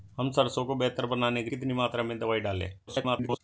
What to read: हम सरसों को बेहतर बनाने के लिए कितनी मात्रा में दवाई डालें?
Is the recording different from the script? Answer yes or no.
yes